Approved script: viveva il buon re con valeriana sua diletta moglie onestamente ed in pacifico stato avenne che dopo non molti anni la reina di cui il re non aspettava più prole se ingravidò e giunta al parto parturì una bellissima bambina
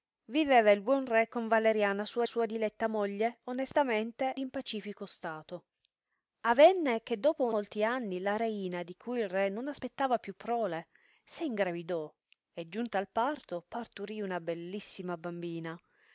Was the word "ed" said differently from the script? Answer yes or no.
yes